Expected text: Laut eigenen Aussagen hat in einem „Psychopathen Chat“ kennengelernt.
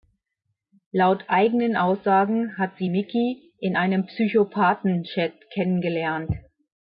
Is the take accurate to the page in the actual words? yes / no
no